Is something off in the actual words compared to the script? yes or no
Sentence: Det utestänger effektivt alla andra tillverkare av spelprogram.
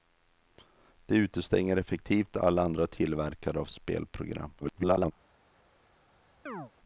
yes